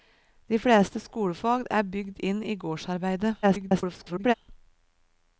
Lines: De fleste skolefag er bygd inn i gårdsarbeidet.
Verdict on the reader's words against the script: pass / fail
fail